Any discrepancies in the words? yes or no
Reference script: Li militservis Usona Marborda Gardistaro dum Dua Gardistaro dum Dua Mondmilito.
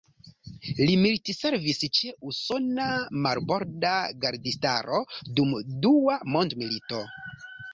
yes